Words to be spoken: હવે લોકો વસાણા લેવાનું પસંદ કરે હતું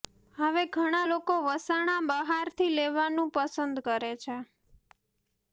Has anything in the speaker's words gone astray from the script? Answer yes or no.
yes